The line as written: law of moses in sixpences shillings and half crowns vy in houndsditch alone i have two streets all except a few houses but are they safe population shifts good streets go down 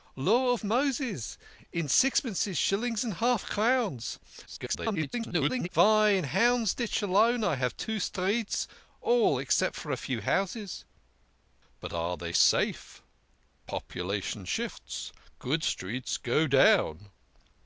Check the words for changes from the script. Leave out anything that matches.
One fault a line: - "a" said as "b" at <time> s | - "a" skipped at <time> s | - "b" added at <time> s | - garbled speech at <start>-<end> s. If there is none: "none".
- garbled speech at 4.5-5.7 s